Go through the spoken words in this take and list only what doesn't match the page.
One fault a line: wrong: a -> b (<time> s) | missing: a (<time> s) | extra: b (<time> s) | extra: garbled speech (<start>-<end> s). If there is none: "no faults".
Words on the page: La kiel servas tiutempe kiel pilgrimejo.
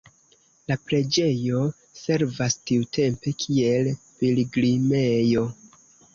wrong: kiel -> preĝejo (0.8 s)